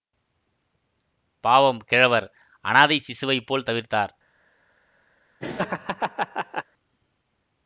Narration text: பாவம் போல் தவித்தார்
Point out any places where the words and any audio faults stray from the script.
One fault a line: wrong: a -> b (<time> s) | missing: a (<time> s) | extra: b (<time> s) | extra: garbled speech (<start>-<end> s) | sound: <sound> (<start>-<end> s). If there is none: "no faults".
extra: கிழவர் அனாதைச் சிசுவைப் (1.8 s)
sound: laugh (5.4-6.6 s)